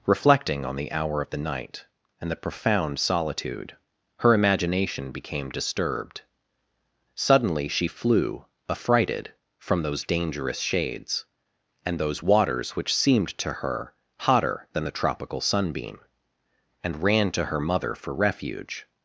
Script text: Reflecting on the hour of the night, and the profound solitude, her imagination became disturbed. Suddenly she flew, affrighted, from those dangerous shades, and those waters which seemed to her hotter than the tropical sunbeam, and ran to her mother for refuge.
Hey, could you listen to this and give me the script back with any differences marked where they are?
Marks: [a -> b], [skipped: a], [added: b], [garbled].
Reflecting on the hour of the night, and the profound solitude, her imagination became disturbed. Suddenly she flew, affrighted, from those dangerous shades, and those waters which seemed to her hotter than the tropical sunbeam, and ran to her mother for refuge.